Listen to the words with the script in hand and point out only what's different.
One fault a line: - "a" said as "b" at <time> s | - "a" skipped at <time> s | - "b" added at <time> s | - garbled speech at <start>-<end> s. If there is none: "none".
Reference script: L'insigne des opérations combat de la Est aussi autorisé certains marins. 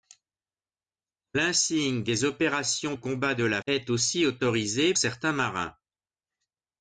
none